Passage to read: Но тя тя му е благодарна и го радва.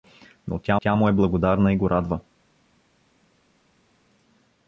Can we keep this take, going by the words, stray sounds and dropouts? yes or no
yes